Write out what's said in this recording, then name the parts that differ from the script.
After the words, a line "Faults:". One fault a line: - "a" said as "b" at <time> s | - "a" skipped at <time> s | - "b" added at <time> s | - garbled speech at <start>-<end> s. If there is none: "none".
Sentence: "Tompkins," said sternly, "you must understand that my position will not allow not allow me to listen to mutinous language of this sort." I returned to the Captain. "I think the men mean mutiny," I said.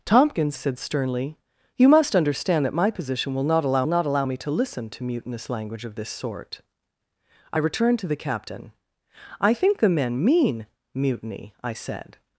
"Tompkins," said sternly, "you must understand that my position will not allow not allow me to listen to mutinous language of this sort." I returned to the Captain. "I think the men mean mutiny," I said.
Faults:
none